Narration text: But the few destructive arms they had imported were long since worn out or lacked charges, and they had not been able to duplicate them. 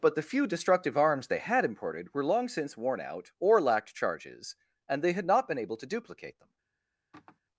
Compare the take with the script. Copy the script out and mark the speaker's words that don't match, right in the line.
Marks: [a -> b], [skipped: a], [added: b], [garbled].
But the few destructive arms they had imported were long since worn out or lacked charges, and they had not been able to duplicate them.